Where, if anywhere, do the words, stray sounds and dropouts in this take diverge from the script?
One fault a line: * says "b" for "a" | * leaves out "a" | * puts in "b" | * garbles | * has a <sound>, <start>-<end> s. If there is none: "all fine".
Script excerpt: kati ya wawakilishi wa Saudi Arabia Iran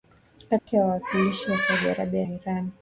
* has a dropout, 0.6-0.7 s